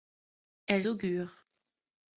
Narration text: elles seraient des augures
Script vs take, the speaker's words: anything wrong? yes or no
yes